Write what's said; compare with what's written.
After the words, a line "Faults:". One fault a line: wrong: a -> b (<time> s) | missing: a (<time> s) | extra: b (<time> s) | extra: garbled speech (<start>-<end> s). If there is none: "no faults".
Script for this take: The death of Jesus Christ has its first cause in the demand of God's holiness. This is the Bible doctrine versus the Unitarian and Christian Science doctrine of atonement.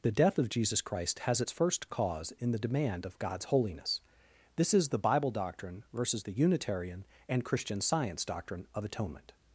The death of Jesus Christ has its first cause in the demand of God's holiness. This is the Bible doctrine versus the Unitarian and Christian Science doctrine of atonement.
Faults:
no faults